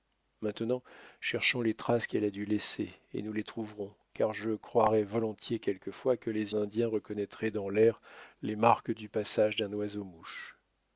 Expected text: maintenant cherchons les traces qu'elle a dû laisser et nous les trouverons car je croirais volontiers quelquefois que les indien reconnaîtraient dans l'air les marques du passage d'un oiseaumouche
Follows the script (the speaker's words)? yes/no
yes